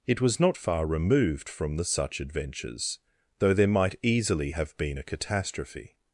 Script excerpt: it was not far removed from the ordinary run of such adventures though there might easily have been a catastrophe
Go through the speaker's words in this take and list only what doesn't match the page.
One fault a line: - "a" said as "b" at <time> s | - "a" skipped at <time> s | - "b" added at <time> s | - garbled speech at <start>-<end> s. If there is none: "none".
- "ordinary run of" skipped at 1.8 s